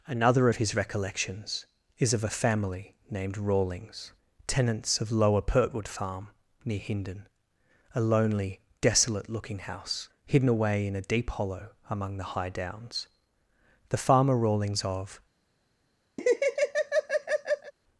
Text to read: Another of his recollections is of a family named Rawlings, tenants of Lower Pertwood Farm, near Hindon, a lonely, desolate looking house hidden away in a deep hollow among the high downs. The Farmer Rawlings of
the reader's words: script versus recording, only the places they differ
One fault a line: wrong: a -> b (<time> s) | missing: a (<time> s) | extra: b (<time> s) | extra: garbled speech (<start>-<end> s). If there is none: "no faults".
no faults